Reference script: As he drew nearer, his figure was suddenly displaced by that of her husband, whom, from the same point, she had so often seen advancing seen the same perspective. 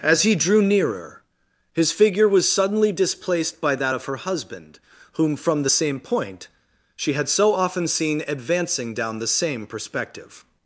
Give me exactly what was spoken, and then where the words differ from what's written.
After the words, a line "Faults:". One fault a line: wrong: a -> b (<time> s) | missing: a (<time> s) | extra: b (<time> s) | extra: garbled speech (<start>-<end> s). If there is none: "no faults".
As he drew nearer, his figure was suddenly displaced by that of her husband, whom, from the same point, she had so often seen advancing down the same perspective.
Faults:
wrong: seen -> down (8.9 s)